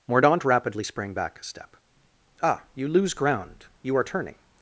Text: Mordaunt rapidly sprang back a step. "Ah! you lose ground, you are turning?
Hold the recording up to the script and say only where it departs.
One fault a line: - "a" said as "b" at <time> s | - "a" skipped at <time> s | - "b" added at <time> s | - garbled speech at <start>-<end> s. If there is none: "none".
none